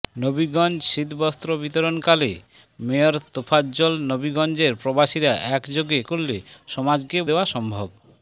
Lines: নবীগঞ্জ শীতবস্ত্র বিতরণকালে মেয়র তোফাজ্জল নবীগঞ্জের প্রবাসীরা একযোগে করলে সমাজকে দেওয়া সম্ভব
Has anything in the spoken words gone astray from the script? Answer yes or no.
no